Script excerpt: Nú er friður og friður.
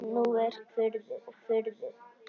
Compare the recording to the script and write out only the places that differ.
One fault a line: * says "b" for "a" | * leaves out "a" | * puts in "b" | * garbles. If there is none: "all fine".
all fine